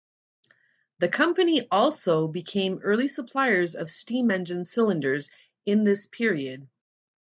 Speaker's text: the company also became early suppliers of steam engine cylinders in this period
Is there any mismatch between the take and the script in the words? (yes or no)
no